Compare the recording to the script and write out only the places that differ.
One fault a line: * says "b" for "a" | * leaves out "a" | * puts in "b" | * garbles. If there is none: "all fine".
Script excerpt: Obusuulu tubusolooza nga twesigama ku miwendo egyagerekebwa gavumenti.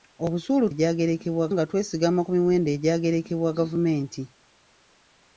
* says "egyagerekebwa" for "tubusolooza"